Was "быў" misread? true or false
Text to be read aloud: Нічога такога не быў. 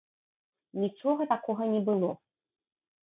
true